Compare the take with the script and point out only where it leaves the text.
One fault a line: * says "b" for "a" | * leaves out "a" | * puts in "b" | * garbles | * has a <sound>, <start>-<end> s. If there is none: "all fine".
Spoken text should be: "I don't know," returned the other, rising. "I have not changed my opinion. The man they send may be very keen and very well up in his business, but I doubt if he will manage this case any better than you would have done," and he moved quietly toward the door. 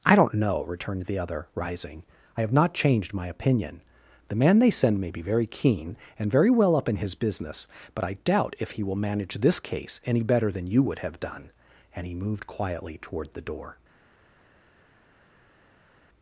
all fine